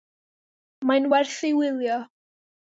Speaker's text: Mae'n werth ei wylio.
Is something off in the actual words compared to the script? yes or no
no